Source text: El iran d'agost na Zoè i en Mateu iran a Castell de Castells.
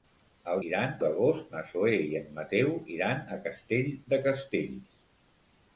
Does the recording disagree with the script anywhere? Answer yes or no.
no